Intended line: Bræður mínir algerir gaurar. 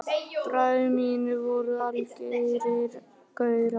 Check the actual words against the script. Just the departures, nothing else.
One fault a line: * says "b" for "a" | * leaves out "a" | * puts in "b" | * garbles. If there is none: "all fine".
* puts in "voru"